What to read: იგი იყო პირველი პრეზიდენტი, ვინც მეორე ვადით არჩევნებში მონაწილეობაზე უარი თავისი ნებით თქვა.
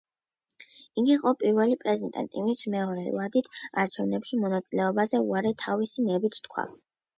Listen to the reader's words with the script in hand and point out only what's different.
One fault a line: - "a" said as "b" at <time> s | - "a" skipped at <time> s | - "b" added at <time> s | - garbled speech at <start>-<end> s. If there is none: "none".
none